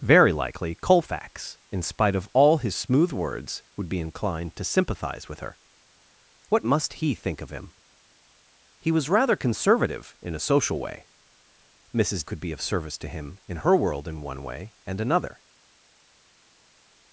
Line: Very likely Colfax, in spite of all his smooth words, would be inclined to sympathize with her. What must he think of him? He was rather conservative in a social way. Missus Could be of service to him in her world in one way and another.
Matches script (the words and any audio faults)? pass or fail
pass